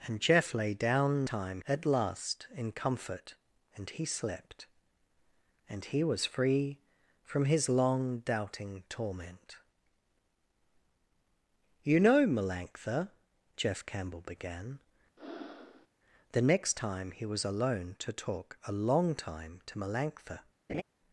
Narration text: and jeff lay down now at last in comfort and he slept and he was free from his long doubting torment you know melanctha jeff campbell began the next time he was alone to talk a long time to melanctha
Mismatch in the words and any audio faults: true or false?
true